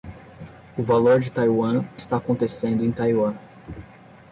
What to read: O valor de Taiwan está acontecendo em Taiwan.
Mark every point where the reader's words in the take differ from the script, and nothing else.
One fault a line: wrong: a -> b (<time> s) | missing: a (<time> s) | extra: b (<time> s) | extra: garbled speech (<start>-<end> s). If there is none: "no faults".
no faults